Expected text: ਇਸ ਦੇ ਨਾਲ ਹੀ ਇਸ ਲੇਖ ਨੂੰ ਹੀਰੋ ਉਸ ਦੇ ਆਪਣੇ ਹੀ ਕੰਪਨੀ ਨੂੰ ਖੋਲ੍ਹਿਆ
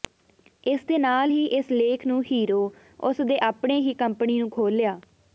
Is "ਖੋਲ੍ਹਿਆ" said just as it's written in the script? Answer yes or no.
yes